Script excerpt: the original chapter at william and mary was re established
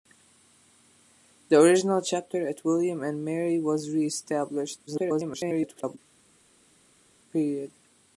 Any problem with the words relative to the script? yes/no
yes